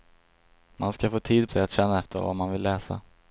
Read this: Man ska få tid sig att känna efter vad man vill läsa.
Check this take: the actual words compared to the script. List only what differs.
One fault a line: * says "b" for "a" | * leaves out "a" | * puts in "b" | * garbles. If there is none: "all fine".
all fine